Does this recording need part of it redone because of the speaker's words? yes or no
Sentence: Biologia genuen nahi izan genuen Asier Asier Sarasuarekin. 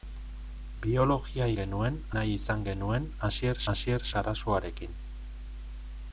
no